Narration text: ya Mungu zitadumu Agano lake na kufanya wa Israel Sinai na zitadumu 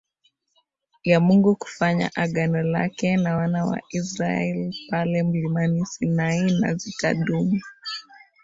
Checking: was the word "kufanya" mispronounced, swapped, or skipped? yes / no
yes